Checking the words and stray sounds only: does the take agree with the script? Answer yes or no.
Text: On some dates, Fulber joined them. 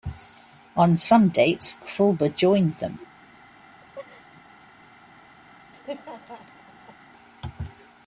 no